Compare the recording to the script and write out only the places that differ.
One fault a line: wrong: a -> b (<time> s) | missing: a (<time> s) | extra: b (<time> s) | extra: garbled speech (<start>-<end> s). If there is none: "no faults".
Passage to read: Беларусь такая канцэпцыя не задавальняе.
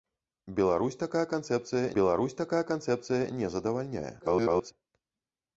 extra: беларусь такая канцэпцыя (2.0 s)
extra: garbled speech (4.2-4.7 s)